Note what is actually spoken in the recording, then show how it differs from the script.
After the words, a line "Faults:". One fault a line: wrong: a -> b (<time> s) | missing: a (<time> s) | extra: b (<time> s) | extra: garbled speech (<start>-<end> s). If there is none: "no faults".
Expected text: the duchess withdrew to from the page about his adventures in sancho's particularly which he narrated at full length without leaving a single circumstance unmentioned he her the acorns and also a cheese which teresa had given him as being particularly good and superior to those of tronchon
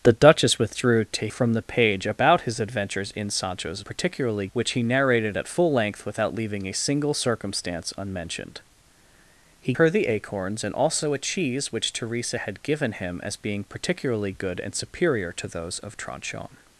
the duchess withdrew to from the page about his adventures in sancho's particularly which he narrated at full length without leaving a single circumstance unmentioned he her the acorns and also a cheese which teresa had given him as being particularly good and superior to those of tronchon
Faults:
no faults